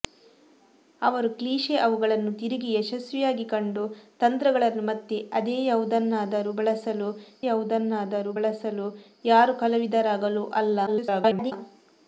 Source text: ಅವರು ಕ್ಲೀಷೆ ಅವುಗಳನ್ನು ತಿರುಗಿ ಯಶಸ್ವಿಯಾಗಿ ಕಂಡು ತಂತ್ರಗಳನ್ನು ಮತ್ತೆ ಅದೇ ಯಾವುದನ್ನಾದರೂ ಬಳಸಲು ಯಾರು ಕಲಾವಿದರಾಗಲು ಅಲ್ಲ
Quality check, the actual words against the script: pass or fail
fail